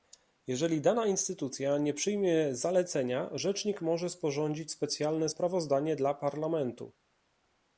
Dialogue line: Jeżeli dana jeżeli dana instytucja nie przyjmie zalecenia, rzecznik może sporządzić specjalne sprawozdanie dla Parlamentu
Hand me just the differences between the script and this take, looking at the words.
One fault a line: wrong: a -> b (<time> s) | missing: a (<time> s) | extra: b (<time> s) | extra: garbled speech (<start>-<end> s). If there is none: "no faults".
missing: jeżeli dana (1.1 s)